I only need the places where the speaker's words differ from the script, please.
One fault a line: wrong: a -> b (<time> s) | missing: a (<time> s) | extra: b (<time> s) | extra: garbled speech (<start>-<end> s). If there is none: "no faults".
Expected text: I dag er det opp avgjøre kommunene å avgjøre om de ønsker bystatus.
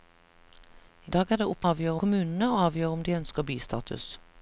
no faults